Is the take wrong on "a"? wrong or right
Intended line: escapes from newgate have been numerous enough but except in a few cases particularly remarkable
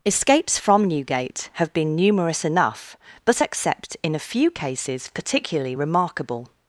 right